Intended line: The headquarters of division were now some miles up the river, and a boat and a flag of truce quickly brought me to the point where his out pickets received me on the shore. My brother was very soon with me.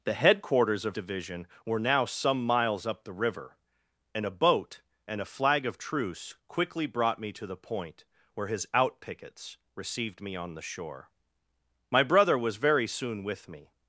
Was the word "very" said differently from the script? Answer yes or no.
no